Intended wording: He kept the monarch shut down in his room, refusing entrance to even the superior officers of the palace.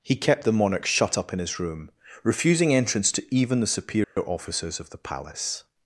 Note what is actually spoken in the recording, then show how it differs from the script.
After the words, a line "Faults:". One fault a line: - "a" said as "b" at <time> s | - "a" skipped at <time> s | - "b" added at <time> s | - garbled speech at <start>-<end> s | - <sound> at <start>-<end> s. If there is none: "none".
He kept the monarch shut up in his room, refusing entrance to even the superior officers of the palace.
Faults:
- "down" said as "up" at 1.1 s
- dropout at 4.0-4.2 s